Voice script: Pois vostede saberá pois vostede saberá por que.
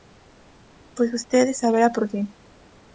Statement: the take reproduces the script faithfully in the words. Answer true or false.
false